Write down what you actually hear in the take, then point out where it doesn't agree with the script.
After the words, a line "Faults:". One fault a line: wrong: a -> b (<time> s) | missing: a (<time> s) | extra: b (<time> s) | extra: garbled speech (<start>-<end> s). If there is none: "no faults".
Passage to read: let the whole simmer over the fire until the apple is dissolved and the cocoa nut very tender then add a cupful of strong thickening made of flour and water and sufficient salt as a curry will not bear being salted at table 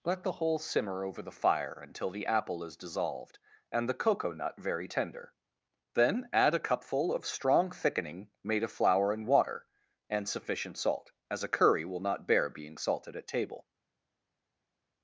let the whole simmer over the fire until the apple is dissolved and the cocoa nut very tender then add a cupful of strong thickening made of flour and water and sufficient salt as a curry will not bear being salted at table
Faults:
no faults